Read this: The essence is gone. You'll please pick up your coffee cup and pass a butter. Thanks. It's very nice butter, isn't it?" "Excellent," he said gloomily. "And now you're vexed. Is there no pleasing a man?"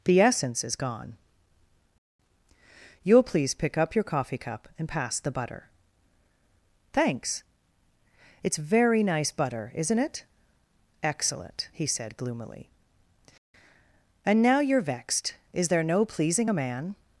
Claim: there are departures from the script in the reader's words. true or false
true